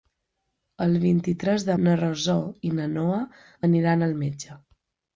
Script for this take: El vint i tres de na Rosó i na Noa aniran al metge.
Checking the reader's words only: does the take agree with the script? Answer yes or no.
yes